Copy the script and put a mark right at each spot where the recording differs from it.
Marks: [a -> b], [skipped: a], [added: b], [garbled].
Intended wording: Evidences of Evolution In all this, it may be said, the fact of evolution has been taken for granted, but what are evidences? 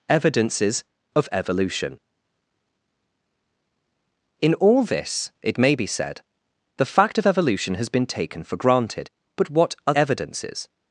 Evidences of Evolution In all this, it may be said, the fact of evolution has been taken for granted, but what are evidences?